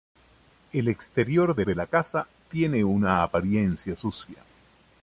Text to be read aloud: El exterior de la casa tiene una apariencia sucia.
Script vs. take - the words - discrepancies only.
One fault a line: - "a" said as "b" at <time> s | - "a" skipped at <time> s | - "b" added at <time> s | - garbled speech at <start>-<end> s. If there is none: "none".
- "de" added at 1.6 s